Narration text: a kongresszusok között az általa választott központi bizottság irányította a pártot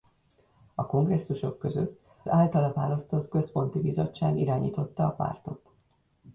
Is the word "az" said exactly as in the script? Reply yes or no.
no